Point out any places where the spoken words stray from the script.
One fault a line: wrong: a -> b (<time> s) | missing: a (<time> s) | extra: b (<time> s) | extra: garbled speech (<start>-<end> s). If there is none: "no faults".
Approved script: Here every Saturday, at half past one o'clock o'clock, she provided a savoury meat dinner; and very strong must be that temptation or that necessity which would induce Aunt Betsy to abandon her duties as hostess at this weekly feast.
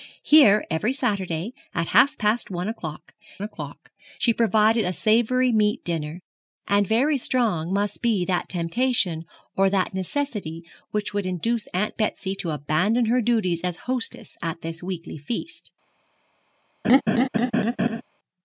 no faults